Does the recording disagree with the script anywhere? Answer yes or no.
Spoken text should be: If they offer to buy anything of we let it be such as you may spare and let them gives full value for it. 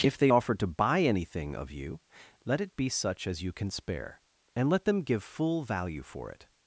yes